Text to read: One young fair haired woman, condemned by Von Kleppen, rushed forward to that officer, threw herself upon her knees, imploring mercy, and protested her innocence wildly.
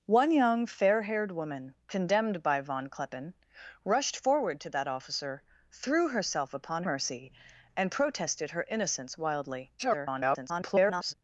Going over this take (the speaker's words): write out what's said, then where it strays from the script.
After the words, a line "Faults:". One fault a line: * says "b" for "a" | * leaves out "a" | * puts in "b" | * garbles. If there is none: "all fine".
One young fair haired woman, condemned by Von Kleppen, rushed forward to that officer, threw herself upon mercy, and protested her innocence wildly. [garbled]
Faults:
* leaves out "her knees imploring"
* garbles